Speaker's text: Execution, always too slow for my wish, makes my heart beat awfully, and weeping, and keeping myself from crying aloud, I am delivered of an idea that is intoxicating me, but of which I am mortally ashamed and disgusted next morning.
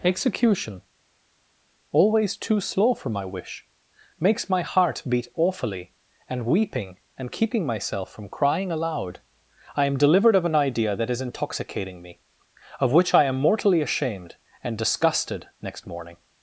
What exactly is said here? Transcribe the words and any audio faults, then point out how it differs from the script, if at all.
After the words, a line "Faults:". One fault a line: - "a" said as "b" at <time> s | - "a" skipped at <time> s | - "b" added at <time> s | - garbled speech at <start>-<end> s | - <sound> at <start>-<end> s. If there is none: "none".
Execution, always too slow for my wish, makes my heart beat awfully, and weeping, and keeping myself from crying aloud, I am delivered of an idea that is intoxicating me, of which I am mortally ashamed and disgusted next morning.
Faults:
- "but" skipped at 12.2 s